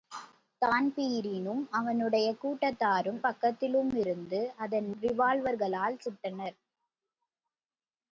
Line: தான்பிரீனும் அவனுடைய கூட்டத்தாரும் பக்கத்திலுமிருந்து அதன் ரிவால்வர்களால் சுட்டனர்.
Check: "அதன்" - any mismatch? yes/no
no